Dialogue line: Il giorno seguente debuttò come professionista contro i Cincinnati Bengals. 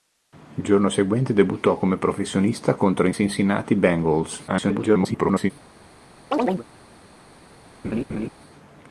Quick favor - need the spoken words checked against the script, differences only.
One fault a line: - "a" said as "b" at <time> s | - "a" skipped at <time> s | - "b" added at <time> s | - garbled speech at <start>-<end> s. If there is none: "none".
- garbled speech at 4.5-5.5 s